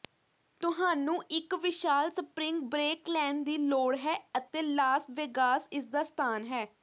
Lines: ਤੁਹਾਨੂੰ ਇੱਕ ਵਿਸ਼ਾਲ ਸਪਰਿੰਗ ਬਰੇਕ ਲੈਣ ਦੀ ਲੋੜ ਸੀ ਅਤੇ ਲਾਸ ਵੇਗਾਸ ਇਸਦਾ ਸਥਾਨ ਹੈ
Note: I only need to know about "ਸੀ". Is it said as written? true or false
false